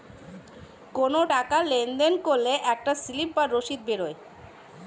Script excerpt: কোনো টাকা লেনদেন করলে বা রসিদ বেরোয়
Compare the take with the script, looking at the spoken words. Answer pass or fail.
fail